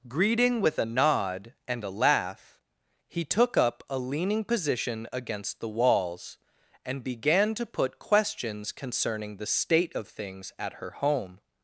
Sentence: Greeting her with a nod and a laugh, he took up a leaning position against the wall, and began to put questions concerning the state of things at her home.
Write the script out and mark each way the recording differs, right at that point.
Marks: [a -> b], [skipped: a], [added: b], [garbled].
Greeting [skipped: her] with a nod and a laugh, he took up a leaning position against the [wall, -> walls] and began to put questions concerning the state of things at her home.